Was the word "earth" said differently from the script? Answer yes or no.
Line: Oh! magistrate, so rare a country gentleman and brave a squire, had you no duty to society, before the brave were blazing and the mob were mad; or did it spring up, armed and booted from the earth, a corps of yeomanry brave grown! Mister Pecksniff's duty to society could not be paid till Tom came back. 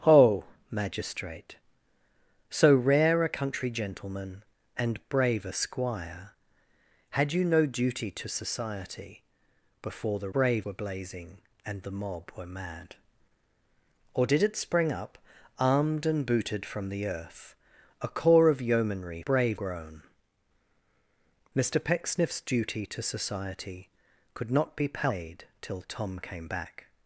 no